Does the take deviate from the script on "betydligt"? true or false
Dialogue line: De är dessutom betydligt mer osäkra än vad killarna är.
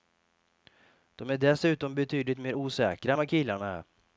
false